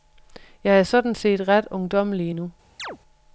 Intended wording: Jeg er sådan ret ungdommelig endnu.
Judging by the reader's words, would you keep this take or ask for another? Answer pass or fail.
fail